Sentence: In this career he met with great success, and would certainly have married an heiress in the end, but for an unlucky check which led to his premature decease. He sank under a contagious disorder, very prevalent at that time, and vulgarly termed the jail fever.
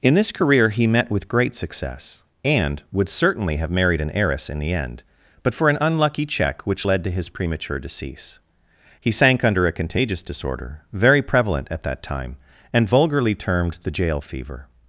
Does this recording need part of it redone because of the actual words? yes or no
no